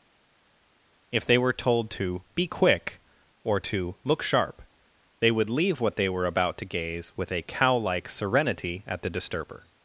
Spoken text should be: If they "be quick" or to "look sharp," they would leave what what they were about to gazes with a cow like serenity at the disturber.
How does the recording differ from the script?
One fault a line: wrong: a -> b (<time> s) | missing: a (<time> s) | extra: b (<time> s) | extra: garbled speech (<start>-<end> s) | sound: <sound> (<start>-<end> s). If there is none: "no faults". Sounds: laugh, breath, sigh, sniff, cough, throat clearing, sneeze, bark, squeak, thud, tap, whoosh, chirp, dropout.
extra: were told to (1.4 s)
missing: what (6.0 s)
wrong: gazes -> gaze (6.7 s)